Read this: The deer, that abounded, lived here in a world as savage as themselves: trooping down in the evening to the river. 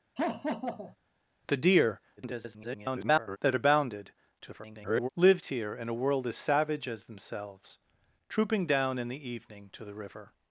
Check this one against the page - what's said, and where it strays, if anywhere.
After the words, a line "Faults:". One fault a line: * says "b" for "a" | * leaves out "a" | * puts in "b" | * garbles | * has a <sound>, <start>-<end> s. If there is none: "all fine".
The deer, [garbled] that abounded, [garbled] lived here in a world as savage as themselves: trooping down in the evening to the river.
Faults:
* has a laugh, 0.2-1.0 s
* garbles
* garbles